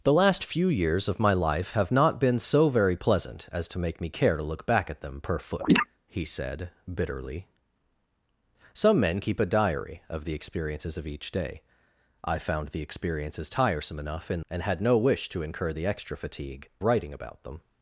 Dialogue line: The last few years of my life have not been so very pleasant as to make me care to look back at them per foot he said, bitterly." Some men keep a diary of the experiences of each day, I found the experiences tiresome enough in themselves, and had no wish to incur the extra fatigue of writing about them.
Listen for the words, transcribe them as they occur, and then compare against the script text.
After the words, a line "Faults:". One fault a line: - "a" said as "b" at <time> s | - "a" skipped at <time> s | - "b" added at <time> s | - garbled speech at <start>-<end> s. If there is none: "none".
The last few years of my life have not been so very pleasant as to make me care to look back at them per foot he said, bitterly." Some men keep a diary of the experiences of each day, I found the experiences tiresome enough in and had no wish to incur the extra fatigue writing about them.
Faults:
- "themselves" skipped at 14.4 s
- "of" skipped at 16.7 s